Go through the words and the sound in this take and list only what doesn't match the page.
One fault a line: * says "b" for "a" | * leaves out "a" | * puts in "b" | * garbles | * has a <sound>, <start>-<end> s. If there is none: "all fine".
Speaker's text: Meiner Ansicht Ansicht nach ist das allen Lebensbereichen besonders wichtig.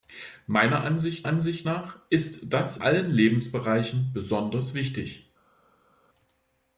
all fine